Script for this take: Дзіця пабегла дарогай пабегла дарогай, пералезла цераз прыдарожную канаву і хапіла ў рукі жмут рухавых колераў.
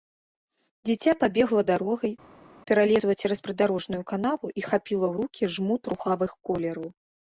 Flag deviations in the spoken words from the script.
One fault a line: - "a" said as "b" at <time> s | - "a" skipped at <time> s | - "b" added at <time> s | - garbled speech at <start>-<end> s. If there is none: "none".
- "пабегла дарогай" skipped at 2.1 s